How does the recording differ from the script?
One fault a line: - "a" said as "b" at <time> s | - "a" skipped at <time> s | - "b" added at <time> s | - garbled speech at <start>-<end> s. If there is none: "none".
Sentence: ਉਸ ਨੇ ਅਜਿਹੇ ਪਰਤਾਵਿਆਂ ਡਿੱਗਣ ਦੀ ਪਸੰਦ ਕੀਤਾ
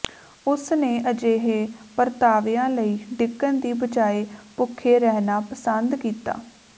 - "ਲਈ" added at 2.7 s
- "ਬਜਾਏ ਭੁੱਖੇ ਰਹਿਣਾ" added at 3.8 s